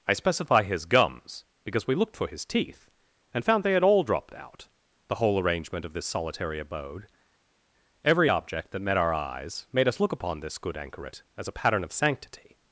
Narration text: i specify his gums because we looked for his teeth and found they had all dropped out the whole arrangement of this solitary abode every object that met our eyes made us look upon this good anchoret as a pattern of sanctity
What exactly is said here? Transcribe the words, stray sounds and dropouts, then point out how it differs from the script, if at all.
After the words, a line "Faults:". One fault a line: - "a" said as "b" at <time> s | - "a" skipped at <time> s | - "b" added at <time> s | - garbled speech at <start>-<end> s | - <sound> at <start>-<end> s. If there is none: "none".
i specify his gums because we looked for his teeth and found they had all dropped out the whole arrangement of this solitary abode every object that met our eyes made us look upon this good anchoret as a pattern of sanctity
Faults:
none